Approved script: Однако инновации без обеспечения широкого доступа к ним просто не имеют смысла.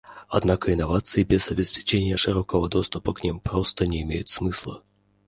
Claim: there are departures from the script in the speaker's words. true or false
false